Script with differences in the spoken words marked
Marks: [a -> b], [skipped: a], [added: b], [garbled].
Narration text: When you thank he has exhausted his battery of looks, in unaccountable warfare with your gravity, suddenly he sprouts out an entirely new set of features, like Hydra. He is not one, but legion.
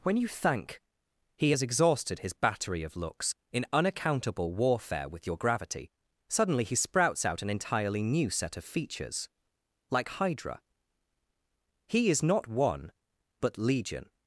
When you thank he has exhausted his battery of looks, in unaccountable warfare with your gravity, suddenly he sprouts out an entirely new set of features, like Hydra. He is not one, but legion.